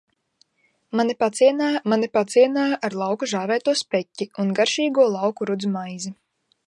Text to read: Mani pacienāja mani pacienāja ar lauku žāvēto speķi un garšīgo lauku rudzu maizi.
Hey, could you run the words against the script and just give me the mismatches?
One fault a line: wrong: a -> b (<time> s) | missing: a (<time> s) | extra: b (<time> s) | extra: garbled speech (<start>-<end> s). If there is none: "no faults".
no faults